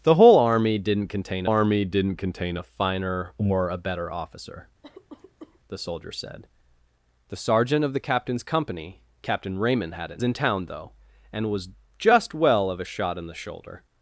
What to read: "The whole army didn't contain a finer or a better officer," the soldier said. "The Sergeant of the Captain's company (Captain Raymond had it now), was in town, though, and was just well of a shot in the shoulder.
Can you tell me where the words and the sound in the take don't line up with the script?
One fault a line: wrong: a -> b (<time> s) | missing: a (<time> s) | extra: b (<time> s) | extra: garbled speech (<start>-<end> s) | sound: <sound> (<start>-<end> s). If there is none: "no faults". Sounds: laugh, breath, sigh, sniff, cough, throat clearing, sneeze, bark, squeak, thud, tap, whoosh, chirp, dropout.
extra: army didn't contain (1.4 s)
sound: cough (4.8-5.6 s)
missing: now was (10.2 s)